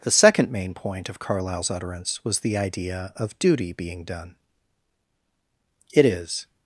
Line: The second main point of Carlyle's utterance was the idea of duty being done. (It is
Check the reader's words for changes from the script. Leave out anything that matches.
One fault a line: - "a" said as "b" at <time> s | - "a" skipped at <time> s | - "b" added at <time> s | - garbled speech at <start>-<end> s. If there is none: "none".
none